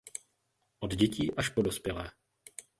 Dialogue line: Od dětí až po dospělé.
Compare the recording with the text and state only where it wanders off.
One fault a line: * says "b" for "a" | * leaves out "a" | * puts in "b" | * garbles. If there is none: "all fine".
all fine